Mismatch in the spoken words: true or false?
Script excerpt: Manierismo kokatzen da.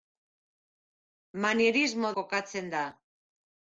false